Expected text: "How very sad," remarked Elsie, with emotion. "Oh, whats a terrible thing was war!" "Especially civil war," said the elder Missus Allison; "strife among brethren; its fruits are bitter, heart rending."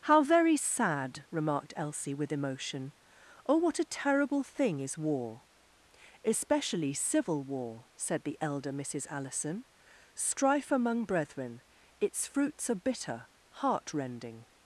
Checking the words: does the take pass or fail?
fail